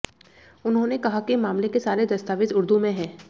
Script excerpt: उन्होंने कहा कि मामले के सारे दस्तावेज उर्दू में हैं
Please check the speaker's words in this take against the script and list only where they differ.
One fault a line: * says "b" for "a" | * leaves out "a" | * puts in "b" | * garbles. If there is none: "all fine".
all fine